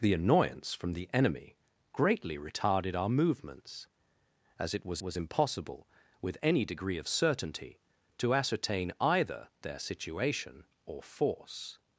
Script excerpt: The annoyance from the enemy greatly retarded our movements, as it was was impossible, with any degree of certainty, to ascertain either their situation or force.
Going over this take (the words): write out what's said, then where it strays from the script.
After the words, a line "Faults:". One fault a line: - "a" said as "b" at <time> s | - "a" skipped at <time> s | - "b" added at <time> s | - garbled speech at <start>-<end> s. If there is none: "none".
The annoyance from the enemy greatly retarded our movements, as it was was impossible, with any degree of certainty, to ascertain either their situation or force.
Faults:
none